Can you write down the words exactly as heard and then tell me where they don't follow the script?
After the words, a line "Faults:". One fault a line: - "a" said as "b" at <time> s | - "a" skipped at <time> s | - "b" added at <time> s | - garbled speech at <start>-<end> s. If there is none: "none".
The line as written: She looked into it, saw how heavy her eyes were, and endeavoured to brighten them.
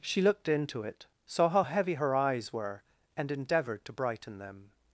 She looked into it, saw how heavy her eyes were, and endeavoured to brighten them.
Faults:
none